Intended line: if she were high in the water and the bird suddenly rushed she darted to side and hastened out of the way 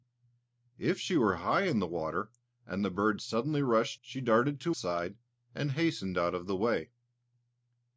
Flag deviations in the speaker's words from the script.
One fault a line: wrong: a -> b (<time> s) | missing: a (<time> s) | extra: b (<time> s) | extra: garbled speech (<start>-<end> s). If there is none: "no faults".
no faults